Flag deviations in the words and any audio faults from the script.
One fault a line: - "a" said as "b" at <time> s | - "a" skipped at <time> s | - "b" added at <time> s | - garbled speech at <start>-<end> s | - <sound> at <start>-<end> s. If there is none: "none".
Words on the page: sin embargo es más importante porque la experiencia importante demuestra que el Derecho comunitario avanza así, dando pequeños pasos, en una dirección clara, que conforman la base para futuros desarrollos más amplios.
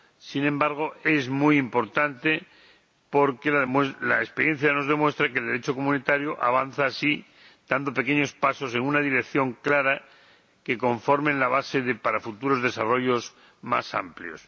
- "más" said as "muy" at 1.3 s
- "importante" said as "nos" at 4.7 s